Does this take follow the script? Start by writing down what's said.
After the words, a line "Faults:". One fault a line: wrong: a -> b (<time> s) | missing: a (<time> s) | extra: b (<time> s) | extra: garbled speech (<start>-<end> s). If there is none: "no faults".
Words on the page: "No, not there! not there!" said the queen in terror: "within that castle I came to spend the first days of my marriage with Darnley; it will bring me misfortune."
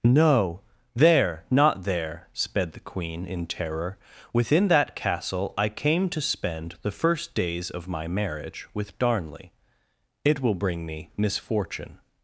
"No, there! not there!" sped the queen in terror: "within that castle I came to spend the first days of my marriage with Darnley; it will bring me misfortune."
Faults:
missing: not (0.6 s)
wrong: said -> sped (2.3 s)